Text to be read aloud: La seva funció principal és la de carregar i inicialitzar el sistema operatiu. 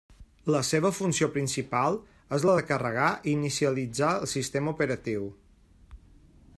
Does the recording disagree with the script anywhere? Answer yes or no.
no